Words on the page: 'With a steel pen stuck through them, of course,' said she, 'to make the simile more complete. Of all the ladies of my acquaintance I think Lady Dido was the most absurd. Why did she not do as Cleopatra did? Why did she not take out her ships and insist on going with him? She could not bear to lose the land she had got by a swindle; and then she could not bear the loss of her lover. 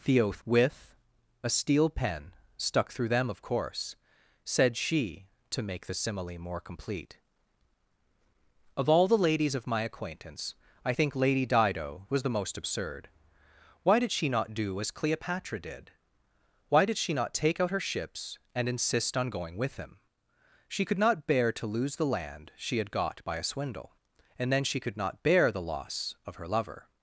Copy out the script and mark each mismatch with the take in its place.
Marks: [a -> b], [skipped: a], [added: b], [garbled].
[added: the oath] 'With a steel pen stuck through them, of course,' said she, 'to make the simile more complete. Of all the ladies of my acquaintance I think Lady Dido was the most absurd. Why did she not do as Cleopatra did? Why did she not take out her ships and insist on going with him? She could not bear to lose the land she had got by a swindle; and then she could not bear the loss of her lover.